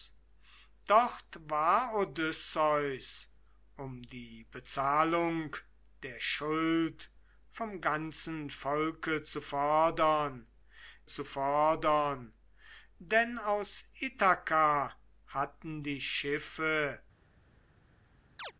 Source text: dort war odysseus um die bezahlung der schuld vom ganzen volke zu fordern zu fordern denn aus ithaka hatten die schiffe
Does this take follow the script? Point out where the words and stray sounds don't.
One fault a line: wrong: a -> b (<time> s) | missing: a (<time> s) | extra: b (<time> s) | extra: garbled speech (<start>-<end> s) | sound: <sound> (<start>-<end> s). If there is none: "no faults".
sound: chirp (18.4-18.5 s)